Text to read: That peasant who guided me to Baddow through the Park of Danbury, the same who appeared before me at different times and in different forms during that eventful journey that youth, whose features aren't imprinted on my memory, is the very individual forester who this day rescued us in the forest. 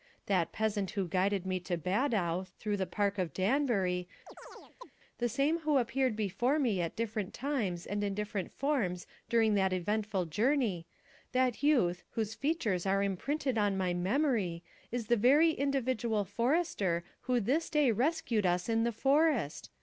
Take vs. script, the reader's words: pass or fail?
fail